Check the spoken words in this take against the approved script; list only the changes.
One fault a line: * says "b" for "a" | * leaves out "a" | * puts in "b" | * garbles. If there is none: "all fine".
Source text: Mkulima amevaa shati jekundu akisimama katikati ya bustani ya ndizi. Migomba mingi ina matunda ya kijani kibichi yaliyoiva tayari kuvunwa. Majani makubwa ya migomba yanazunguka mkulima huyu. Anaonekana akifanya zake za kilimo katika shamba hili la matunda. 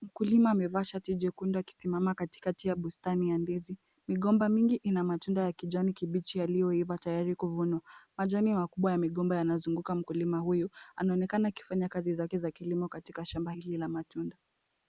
* puts in "kazi"